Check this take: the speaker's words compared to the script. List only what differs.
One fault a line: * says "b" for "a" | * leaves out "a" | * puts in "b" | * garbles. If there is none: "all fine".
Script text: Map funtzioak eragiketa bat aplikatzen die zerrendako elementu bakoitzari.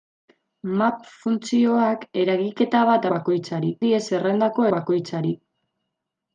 * says "bakoitzari" for "aplikatzen"
* leaves out "elementu"